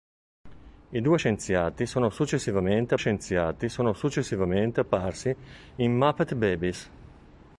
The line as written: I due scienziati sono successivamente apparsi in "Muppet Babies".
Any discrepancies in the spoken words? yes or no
yes